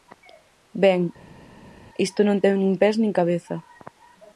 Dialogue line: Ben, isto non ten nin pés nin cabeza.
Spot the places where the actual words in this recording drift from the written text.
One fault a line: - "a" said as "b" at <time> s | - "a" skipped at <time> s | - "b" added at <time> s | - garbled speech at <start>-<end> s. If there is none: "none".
none